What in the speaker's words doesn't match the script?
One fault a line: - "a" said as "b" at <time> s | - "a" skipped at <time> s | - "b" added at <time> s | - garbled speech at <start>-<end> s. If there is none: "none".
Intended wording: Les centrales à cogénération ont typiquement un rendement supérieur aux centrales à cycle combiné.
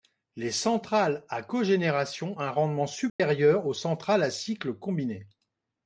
- "ont typiquement" skipped at 2.4 s